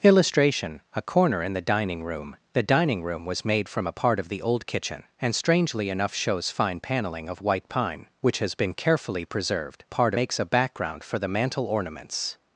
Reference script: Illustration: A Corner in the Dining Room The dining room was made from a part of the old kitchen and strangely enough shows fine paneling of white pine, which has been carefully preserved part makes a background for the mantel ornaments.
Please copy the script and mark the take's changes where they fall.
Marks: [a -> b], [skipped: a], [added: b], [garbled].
Illustration: A Corner in the Dining Room The dining room was made from a part of the old kitchen and strangely enough shows fine paneling of white pine, which has been carefully preserved part makes a background for the mantel ornaments.